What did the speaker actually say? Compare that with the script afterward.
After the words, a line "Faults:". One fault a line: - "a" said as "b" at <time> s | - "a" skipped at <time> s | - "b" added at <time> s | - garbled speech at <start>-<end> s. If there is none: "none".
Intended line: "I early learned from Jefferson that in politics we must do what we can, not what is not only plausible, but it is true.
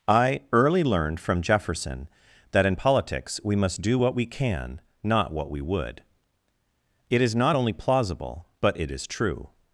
"I early learned from Jefferson that in politics we must do what we can, not what we would." It is not only plausible, but it is true.
Faults:
- "we would It" added at 5.5 s